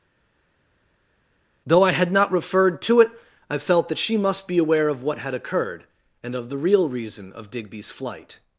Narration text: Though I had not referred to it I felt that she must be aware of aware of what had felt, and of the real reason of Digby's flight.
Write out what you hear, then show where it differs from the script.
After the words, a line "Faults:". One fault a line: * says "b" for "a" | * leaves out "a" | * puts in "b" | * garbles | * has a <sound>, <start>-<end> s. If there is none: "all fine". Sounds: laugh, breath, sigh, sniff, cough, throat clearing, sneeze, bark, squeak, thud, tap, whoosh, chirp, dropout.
Though I had not referred to it I felt that she must be aware of what had occurred, and of the real reason of Digby's flight.
Faults:
* leaves out "aware of"
* says "occurred" for "felt"